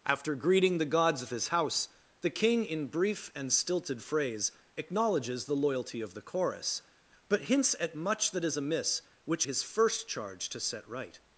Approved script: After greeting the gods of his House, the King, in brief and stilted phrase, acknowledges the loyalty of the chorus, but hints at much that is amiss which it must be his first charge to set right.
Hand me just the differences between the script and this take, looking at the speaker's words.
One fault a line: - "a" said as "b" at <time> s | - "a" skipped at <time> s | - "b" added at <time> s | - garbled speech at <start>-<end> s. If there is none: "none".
- "it must be" skipped at 9.4 s